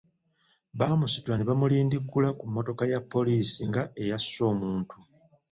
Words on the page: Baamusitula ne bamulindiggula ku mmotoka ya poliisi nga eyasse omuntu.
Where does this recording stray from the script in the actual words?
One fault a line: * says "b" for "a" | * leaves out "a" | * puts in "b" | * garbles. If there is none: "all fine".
all fine